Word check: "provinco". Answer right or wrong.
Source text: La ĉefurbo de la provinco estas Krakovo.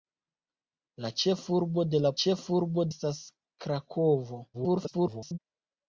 wrong